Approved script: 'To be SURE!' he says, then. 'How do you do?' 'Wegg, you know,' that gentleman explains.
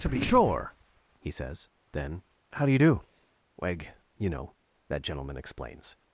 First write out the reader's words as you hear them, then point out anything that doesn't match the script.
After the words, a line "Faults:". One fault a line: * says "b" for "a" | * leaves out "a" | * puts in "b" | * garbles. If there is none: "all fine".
'To be SURE!' he says, then. 'How do you do?' 'Wegg, you know,' that gentleman explains.
Faults:
all fine